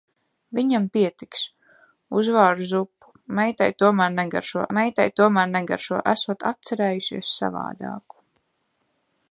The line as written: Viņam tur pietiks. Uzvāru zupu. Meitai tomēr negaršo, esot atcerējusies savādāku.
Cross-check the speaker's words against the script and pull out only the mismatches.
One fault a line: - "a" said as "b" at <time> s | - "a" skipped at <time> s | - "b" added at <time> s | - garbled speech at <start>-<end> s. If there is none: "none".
- "tur" skipped at 0.8 s
- "meitai tomēr negaršo" added at 4.8 s